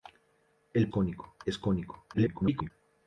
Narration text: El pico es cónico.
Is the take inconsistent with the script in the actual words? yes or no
yes